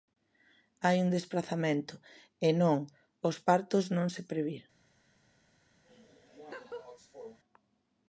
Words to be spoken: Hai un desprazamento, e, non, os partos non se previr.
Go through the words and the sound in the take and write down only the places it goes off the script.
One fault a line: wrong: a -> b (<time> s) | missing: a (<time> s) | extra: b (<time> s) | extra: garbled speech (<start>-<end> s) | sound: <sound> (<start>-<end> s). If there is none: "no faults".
sound: laugh (5.8-7.4 s)